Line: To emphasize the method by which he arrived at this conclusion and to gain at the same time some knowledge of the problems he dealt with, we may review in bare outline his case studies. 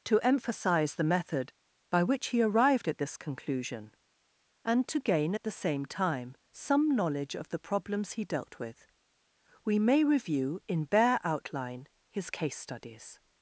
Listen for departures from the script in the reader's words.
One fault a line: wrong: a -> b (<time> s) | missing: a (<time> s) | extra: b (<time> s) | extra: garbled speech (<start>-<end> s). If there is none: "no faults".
no faults